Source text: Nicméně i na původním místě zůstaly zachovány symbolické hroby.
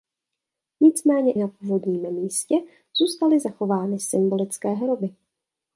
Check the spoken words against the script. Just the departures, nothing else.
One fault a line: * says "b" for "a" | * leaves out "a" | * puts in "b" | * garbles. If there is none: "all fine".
* leaves out "i"